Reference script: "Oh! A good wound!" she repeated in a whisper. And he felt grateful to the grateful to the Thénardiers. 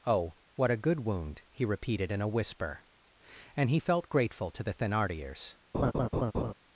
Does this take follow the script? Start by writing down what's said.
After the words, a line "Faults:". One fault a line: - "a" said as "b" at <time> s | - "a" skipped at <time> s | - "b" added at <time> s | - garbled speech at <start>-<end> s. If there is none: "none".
"Oh! What a good wound!" he repeated in a whisper. And he felt grateful to the Thénardiers.
Faults:
- "What" added at 0.6 s
- "she" said as "he" at 1.5 s
- "grateful to the" skipped at 4.7 s